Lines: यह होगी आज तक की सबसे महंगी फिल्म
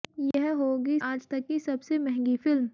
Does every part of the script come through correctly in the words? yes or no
yes